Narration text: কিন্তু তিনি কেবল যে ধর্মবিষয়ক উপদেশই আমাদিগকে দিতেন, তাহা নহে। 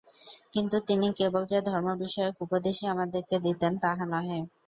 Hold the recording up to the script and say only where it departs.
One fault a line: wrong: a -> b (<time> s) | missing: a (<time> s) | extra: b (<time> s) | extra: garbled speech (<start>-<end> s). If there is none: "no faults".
no faults